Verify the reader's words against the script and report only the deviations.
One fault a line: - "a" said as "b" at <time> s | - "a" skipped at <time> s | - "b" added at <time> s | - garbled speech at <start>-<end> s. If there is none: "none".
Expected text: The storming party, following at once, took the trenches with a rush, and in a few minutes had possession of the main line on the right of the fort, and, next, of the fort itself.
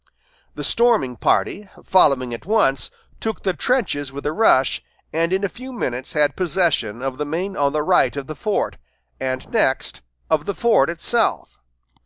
- "line" skipped at 7.6 s